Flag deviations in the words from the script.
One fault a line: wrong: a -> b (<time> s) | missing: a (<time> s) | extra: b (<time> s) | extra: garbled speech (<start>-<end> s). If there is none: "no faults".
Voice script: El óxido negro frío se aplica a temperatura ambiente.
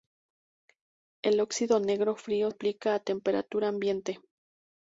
missing: se (2.5 s)